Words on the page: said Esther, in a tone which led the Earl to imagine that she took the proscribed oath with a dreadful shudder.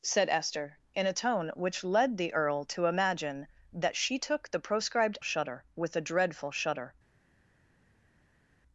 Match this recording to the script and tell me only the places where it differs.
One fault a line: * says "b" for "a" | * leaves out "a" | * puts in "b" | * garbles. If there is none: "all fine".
* says "shudder" for "oath"